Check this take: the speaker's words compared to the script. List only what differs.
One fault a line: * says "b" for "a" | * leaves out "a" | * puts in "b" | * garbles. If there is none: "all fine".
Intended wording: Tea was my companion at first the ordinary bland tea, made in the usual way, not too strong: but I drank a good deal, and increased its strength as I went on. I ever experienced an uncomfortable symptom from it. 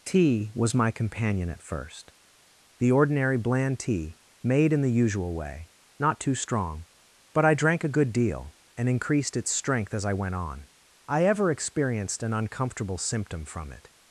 all fine